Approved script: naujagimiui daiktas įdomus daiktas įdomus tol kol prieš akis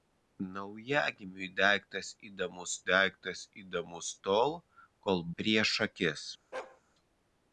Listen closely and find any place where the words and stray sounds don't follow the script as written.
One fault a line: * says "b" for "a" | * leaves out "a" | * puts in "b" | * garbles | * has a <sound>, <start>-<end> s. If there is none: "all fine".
* has a bark, 6.5-6.8 s